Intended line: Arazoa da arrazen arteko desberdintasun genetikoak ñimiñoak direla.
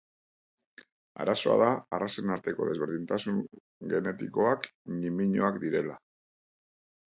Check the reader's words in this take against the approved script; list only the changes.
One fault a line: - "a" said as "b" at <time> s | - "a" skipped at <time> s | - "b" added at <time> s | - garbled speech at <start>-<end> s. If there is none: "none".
none